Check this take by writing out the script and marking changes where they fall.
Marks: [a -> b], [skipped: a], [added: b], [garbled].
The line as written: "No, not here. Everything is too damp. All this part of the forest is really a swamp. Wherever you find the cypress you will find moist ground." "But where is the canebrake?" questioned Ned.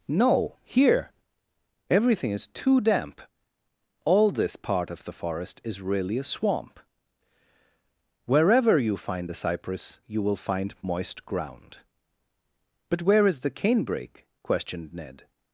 "No, [skipped: not] here. Everything is too damp. All this part of the forest is really a swamp. Wherever you find the cypress you will find moist ground." "But where is the canebrake?" questioned Ned.